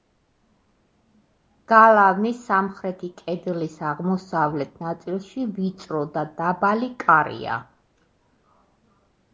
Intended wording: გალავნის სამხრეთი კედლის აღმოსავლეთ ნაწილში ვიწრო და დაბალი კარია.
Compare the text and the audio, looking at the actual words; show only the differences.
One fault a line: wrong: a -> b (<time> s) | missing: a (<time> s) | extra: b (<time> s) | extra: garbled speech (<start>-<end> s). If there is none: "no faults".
no faults